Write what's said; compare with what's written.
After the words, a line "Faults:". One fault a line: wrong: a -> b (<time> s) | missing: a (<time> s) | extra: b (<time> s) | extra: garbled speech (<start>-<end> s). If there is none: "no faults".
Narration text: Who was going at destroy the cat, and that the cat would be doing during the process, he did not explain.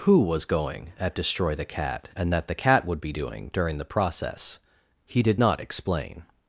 Who was going at destroy the cat, and that the cat would be doing during the process, he did not explain.
Faults:
no faults